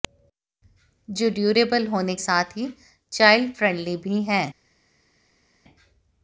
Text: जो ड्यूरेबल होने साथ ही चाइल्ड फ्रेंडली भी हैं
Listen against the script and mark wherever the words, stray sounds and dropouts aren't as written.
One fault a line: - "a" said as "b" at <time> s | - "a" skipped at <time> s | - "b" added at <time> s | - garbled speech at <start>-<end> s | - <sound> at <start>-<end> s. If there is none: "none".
none